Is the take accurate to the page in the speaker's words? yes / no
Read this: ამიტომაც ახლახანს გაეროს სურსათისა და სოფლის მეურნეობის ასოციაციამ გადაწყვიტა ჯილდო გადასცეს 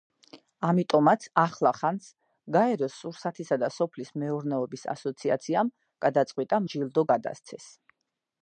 yes